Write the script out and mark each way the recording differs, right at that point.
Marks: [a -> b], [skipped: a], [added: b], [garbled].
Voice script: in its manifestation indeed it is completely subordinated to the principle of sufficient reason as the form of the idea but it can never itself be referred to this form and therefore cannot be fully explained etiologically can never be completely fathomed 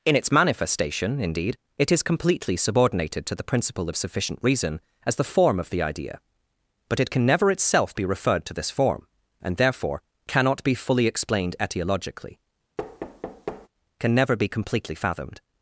in its manifestation indeed it is completely subordinated to the principle of sufficient reason as the form of the idea but it can never itself be referred to this form and therefore cannot be fully explained etiologically can never be completely fathomed